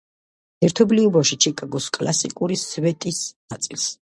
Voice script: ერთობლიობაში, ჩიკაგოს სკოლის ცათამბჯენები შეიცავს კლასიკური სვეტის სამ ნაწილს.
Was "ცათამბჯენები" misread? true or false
true